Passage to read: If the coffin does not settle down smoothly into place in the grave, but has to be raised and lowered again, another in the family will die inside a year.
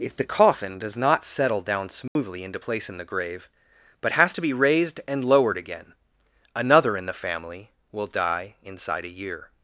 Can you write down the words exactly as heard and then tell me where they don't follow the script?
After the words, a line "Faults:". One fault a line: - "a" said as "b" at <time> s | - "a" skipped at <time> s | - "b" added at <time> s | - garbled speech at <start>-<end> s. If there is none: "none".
If the coffin does not settle down smoothly into place in the grave, but has to be raised and lowered again, another in the family will die inside a year.
Faults:
none